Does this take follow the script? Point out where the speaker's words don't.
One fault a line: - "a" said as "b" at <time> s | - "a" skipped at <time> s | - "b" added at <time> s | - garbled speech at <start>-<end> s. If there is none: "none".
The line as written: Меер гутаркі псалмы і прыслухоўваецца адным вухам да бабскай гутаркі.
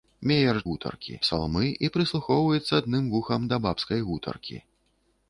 none